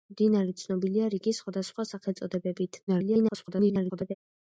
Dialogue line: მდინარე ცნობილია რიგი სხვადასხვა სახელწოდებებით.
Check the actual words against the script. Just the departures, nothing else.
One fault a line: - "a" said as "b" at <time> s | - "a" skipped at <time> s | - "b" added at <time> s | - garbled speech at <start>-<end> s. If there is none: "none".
- garbled speech at 2.9-4.1 s